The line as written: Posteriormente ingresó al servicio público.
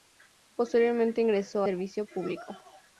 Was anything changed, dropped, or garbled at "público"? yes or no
no